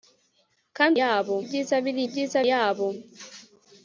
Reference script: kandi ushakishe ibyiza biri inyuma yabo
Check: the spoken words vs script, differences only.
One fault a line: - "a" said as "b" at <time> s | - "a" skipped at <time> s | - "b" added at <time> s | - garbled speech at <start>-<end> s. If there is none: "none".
- "ushakishe" said as "yabo" at 1.0 s
- "inyuma" said as "ibyiza" at 2.1 s